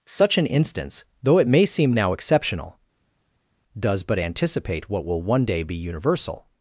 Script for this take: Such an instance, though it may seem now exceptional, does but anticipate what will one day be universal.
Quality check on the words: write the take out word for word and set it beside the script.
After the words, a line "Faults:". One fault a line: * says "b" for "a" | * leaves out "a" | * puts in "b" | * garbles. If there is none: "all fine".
Such an instance, though it may seem now exceptional, does but anticipate what will one day be universal.
Faults:
all fine